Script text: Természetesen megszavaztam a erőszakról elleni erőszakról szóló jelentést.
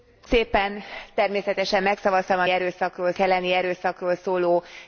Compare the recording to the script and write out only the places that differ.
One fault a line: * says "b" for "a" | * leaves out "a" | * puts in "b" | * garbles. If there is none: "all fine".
all fine